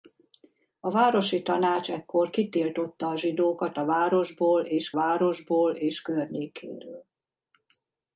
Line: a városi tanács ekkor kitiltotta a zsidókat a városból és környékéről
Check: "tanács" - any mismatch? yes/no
no